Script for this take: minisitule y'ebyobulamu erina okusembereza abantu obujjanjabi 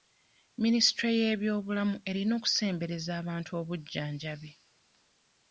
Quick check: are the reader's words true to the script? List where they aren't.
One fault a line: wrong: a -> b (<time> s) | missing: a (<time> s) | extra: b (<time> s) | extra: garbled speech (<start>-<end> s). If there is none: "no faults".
no faults